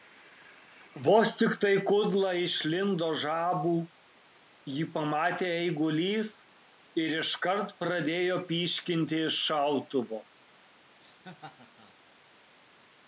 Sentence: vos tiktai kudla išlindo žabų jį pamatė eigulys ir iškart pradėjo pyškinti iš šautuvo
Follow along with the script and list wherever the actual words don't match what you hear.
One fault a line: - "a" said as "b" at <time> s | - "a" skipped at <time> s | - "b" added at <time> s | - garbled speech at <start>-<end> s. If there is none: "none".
none